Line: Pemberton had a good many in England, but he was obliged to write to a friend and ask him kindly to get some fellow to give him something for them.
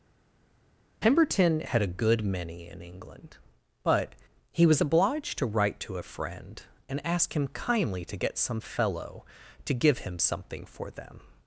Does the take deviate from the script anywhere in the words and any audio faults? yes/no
no